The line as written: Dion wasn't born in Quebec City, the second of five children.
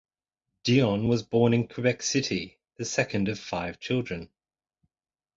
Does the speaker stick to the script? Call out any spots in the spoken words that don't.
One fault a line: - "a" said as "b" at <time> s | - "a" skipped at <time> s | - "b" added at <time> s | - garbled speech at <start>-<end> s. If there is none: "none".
- "wasn't" said as "was" at 1.1 s